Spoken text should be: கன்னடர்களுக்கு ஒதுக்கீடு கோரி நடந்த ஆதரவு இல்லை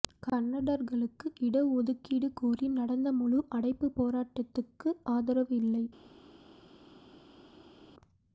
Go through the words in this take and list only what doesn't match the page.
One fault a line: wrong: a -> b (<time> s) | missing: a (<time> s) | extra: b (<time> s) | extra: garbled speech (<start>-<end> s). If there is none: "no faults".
extra: இட (1.4 s)
extra: முழு அடைப்பு போராட்டத்துக்கு (3.2 s)